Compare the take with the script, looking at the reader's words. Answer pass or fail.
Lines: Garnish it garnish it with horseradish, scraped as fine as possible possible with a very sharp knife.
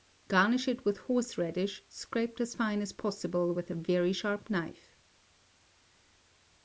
fail